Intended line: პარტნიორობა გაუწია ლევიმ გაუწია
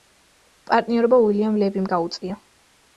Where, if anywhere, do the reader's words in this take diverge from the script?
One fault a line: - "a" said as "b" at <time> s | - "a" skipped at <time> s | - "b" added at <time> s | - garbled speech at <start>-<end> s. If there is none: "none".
- "გაუწია" said as "უილიამ" at 1.3 s